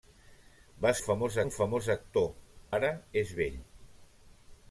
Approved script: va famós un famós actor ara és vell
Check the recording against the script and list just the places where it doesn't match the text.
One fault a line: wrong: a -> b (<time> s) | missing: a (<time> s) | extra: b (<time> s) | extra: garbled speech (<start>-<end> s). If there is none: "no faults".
no faults